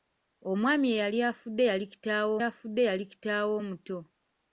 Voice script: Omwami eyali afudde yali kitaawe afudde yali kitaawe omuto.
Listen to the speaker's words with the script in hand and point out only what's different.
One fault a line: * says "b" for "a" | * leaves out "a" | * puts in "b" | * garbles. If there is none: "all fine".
all fine